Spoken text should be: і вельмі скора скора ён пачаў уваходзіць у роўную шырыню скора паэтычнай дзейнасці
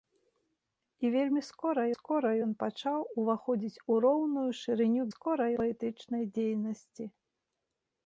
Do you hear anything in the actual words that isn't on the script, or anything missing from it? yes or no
no